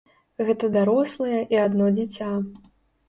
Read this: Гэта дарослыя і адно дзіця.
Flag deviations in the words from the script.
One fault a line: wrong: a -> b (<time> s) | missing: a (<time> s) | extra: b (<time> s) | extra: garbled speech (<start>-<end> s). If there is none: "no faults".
no faults